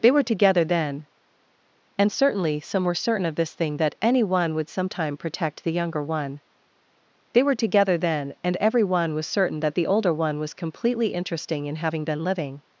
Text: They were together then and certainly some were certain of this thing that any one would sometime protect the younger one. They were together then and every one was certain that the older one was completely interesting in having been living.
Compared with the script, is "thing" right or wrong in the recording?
right